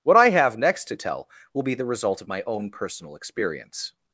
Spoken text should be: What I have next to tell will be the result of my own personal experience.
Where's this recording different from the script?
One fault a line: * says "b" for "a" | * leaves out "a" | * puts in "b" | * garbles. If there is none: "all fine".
all fine